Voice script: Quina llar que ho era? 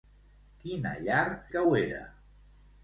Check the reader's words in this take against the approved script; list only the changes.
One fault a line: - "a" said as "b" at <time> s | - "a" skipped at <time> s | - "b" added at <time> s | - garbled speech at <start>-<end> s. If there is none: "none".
none